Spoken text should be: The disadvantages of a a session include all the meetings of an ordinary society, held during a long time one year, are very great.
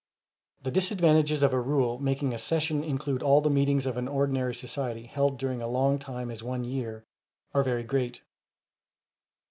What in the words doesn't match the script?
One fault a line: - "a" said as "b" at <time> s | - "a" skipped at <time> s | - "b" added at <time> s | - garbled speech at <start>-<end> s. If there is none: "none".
- "rule making" added at 1.6 s
- "as" added at 6.3 s